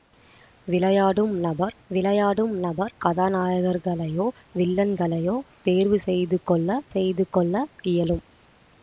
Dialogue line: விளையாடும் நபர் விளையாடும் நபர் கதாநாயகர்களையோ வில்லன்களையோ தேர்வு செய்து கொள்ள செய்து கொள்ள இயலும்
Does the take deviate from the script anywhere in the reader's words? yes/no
no